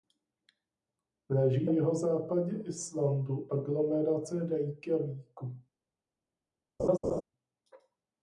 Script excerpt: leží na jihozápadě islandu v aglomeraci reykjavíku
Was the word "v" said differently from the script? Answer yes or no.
yes